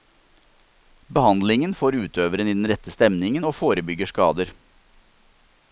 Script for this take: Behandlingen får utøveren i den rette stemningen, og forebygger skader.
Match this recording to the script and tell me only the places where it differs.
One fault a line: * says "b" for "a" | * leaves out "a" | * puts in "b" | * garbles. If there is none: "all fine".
all fine